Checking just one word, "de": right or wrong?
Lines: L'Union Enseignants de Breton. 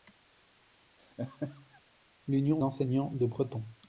right